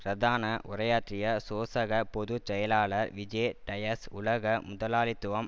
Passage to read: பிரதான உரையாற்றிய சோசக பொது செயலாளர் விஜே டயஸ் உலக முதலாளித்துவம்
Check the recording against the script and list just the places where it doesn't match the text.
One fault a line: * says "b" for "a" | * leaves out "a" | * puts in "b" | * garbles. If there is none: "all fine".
all fine